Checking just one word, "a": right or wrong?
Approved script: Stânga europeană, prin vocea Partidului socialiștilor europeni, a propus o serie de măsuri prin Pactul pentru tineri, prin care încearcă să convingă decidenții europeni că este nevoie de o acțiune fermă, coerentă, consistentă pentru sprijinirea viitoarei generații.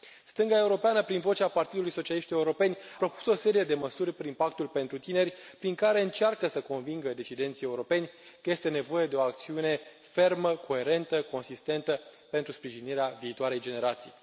wrong